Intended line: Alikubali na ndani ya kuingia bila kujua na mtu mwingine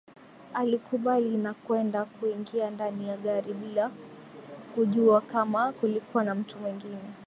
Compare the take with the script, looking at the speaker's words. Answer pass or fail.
fail